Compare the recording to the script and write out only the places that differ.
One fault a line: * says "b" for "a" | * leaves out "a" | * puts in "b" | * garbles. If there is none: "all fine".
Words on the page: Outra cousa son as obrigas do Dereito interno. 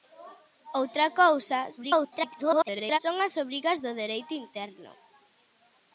* garbles